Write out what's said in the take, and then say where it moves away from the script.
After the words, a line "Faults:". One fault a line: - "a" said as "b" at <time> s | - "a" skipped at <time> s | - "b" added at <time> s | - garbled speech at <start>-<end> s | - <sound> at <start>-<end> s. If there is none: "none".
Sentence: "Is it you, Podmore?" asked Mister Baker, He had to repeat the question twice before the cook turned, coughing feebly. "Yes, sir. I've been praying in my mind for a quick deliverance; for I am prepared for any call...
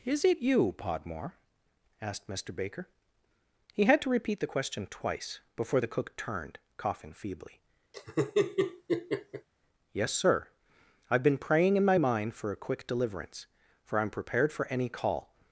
"Is it you, Podmore?" asked Mister Baker, He had to repeat the question twice before the cook turned, coughing feebly. "Yes, sir. I've been praying in my mind for a quick deliverance; for I am prepared for any call...
Faults:
- laugh at 7.9-9.5 s